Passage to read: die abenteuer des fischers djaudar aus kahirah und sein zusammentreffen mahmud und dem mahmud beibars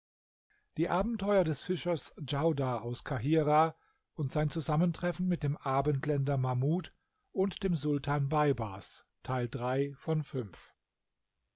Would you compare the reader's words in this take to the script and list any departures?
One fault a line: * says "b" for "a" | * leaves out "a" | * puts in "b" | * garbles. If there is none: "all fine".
* puts in "mit dem abendländer"
* says "sultan" for "mahmud"